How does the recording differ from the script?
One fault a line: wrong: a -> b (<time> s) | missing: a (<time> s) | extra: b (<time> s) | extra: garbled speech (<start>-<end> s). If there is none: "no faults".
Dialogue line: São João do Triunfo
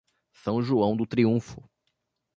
no faults